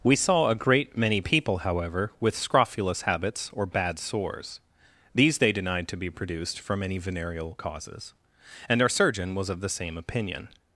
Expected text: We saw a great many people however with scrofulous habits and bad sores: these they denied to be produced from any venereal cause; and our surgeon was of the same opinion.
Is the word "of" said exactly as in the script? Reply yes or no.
yes